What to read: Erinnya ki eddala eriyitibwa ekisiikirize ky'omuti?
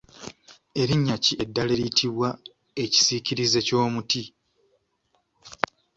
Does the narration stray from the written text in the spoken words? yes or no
no